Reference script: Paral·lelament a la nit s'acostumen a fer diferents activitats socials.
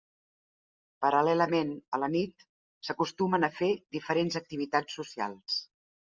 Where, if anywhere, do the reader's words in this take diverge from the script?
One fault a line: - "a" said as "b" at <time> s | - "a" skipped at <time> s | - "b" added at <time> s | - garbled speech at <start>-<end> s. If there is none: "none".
none